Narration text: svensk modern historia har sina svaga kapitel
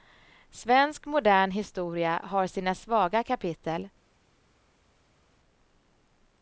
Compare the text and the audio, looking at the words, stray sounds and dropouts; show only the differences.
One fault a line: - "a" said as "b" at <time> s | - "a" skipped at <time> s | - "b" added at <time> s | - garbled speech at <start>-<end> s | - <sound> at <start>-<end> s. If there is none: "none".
none